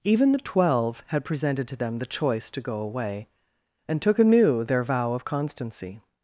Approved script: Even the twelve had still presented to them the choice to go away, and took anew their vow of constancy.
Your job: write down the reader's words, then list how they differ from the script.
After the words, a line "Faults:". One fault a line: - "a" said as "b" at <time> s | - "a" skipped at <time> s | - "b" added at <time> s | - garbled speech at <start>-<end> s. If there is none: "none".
Even the twelve had presented to them the choice to go away, and took anew their vow of constancy.
Faults:
- "still" skipped at 1.2 s